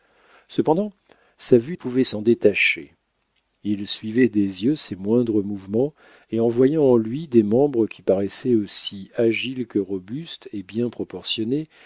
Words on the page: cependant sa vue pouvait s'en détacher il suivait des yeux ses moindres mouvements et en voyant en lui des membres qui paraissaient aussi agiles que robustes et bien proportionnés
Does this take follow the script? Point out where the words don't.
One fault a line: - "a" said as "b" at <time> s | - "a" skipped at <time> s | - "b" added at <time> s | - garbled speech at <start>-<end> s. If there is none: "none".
none